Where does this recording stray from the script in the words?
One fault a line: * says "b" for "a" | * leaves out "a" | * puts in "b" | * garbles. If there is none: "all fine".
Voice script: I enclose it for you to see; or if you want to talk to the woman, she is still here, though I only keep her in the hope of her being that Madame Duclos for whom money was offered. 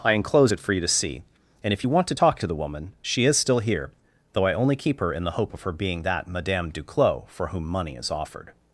* says "and" for "or"
* says "is" for "was"